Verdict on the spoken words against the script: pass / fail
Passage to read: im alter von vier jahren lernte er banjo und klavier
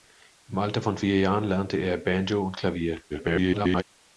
fail